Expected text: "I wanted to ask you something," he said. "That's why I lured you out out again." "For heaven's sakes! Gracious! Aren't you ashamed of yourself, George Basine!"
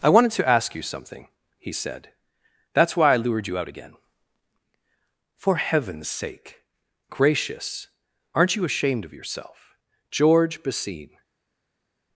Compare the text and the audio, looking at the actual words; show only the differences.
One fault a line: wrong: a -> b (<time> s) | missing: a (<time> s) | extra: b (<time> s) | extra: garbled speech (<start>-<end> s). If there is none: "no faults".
missing: out (3.7 s)
wrong: sakes -> sake (6.1 s)